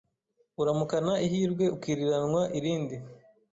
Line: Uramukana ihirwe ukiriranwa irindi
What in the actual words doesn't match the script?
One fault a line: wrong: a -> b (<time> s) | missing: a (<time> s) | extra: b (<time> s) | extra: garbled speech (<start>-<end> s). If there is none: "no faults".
no faults